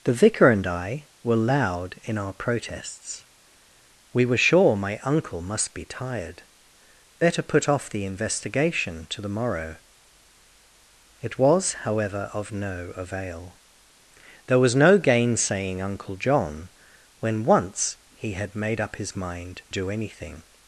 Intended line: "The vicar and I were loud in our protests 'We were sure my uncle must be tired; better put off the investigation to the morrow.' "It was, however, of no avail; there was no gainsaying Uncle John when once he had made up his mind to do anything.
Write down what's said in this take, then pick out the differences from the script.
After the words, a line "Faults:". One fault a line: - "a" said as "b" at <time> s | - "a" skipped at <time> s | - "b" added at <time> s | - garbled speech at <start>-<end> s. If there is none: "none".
"The vicar and I were loud in our protests 'We were sure my uncle must be tired; better put off the investigation to the morrow.' "It was, however, of no avail; there was no gainsaying Uncle John when once he had made up his mind do anything.
Faults:
- "to" skipped at 19.6 s